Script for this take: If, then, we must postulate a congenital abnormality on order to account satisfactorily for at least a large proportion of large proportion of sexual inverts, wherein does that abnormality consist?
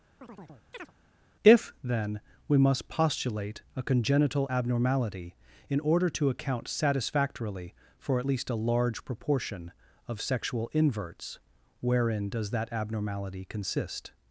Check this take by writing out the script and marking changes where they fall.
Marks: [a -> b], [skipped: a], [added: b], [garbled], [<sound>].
[chirp] If, then, we must postulate a congenital abnormality [on -> in] order to account satisfactorily for at least a large proportion of [skipped: large proportion of] sexual inverts, wherein does that abnormality consist?